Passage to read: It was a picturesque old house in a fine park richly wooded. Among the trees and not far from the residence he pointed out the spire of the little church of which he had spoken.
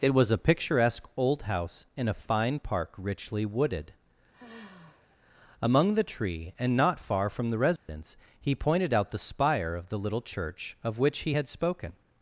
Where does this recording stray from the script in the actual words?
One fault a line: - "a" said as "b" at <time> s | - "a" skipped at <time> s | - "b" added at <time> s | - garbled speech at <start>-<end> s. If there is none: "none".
- "trees" said as "tree" at 6.0 s